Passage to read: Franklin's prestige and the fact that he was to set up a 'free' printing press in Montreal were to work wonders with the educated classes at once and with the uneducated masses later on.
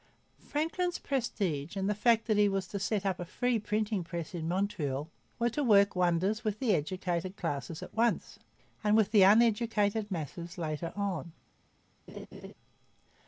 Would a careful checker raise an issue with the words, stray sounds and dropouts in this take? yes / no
yes